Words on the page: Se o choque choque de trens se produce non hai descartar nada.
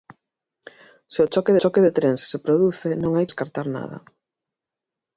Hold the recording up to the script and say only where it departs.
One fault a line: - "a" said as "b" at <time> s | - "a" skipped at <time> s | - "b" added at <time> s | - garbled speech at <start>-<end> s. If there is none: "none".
none